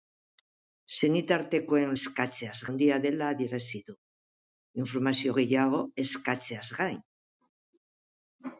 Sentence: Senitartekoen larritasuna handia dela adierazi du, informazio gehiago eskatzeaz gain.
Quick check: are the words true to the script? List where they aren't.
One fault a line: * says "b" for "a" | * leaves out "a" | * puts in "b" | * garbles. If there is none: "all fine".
* says "eskatzeaz" for "larritasuna"